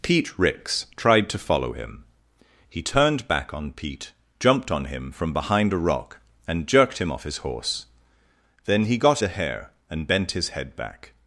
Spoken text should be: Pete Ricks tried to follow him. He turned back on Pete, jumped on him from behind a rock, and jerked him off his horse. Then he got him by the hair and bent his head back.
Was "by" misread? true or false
true